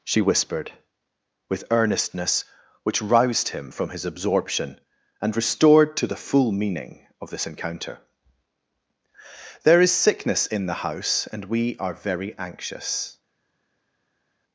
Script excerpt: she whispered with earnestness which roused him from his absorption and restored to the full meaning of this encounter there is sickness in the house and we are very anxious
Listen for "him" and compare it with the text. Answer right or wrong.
right